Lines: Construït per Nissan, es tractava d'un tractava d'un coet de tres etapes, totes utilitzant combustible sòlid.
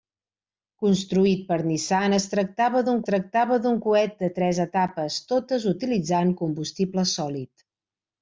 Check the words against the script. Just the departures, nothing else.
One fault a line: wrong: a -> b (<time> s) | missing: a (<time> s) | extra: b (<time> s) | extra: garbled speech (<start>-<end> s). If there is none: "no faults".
no faults